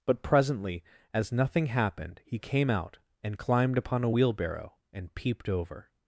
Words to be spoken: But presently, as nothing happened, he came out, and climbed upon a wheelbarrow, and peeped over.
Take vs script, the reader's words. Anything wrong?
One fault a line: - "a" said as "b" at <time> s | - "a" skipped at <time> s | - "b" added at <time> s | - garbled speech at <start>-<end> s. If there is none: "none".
none